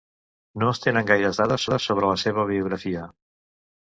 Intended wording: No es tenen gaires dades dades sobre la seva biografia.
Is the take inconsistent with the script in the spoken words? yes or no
no